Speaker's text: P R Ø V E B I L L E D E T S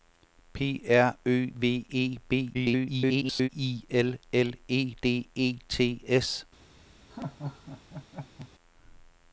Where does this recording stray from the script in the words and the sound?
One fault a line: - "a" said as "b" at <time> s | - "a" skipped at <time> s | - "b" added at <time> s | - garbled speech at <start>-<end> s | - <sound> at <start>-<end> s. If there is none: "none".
- garbled speech at 2.5-3.5 s
- laugh at 7.1-8.5 s